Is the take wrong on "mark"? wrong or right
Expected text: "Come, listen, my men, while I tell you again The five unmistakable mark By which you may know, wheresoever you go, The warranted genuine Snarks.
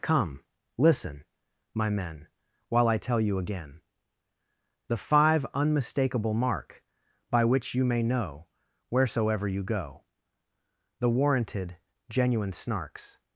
right